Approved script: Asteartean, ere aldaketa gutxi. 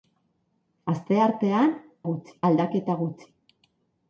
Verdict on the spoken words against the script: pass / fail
fail